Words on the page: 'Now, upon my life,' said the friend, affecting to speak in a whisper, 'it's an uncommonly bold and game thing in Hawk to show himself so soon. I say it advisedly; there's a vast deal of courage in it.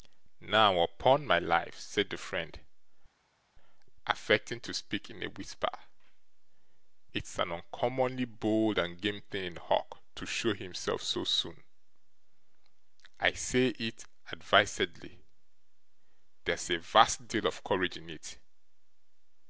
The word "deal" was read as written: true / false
true